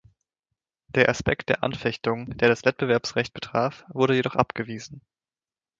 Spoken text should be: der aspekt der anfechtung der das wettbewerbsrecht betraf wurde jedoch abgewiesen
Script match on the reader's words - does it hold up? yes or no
yes